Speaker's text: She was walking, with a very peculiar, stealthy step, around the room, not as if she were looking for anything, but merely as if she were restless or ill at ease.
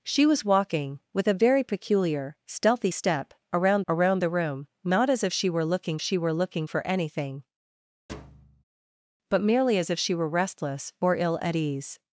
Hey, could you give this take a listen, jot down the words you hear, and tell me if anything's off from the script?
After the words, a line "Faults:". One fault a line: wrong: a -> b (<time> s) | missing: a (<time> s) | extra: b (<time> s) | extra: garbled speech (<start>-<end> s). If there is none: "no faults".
She was walking, with a very peculiar, stealthy step, around around the room, not as if she were looking she were looking for anything, but merely as if she were restless or ill at ease.
Faults:
extra: around (3.9 s)
extra: she were looking (6.0 s)